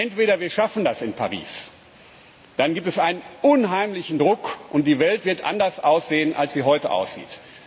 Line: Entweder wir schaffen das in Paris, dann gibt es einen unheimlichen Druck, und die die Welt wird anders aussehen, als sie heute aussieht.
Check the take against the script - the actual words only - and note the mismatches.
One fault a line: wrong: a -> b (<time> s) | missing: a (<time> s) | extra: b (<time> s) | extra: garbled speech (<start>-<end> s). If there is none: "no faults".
missing: die (5.0 s)